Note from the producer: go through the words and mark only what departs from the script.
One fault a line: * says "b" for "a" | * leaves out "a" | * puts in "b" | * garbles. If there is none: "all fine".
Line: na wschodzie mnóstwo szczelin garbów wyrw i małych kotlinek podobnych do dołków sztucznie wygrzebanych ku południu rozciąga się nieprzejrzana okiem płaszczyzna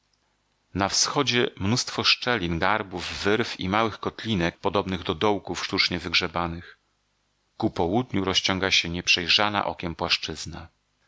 all fine